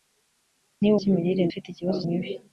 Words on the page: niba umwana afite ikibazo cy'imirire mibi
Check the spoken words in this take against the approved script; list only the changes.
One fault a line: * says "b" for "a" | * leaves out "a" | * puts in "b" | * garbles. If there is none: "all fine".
* says "cy'imirire" for "umwana"
* leaves out "cy'imirire"